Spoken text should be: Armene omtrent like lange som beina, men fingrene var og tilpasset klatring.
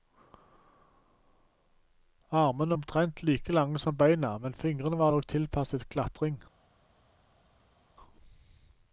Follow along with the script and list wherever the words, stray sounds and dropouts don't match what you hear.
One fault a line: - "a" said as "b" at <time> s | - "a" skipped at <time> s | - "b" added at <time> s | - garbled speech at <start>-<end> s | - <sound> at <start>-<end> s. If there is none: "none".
none